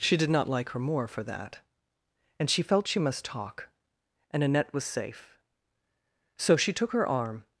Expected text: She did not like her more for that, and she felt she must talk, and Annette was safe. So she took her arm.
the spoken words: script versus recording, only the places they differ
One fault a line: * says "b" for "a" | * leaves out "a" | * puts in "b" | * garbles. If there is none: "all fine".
all fine